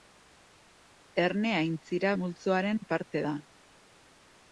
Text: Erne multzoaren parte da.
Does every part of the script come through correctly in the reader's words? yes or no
no